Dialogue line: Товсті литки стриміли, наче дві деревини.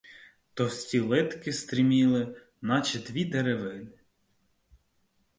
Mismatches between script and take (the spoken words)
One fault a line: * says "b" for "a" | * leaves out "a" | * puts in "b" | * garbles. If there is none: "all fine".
all fine